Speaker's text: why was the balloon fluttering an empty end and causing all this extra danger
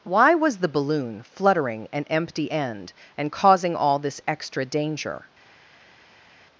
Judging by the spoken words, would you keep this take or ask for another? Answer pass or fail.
pass